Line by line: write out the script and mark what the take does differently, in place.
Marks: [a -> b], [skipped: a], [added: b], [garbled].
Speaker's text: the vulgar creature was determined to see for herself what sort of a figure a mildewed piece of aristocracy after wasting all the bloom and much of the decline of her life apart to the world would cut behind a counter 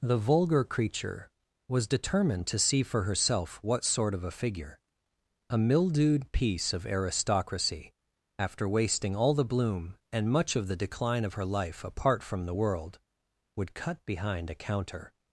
the vulgar creature was determined to see for herself what sort of a figure a mildewed piece of aristocracy after wasting all the bloom and much of the decline of her life apart [to -> from] the world would cut behind a counter